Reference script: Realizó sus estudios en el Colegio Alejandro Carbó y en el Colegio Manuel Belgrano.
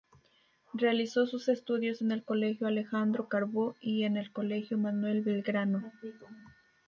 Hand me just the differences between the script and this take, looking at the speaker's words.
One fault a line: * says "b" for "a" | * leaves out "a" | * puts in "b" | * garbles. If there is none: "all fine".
all fine